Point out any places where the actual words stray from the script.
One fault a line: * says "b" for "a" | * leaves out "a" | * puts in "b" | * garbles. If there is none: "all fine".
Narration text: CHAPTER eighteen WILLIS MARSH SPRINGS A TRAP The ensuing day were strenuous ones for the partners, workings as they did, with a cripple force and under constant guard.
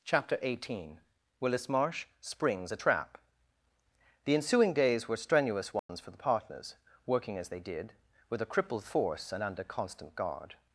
* says "days" for "day"
* says "working" for "workings"
* says "crippled" for "cripple"